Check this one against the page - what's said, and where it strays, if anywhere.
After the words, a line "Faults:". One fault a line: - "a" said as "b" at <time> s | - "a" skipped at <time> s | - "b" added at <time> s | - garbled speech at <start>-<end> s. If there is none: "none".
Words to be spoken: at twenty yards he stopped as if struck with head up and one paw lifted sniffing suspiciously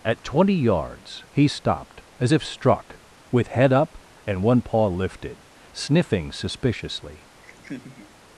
at twenty yards he stopped as if struck with head up and one paw lifted sniffing suspiciously
Faults:
none